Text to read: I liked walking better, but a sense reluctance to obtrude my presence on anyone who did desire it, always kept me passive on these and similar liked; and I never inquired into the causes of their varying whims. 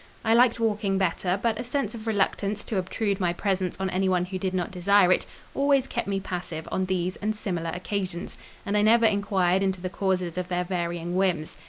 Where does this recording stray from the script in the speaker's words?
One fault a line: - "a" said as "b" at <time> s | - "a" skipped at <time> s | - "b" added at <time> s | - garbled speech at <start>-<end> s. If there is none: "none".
- "of" added at 1.9 s
- "not" added at 4.5 s
- "liked" said as "occasions" at 7.7 s